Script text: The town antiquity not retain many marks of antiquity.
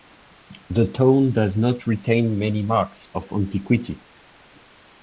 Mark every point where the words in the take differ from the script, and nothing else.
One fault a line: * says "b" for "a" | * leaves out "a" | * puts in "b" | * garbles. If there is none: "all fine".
* says "does" for "antiquity"